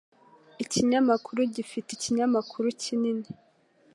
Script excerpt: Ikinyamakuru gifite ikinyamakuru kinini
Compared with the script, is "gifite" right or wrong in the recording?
right